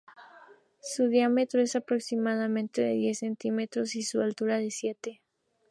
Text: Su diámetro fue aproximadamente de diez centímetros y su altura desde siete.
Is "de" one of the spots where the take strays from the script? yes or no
no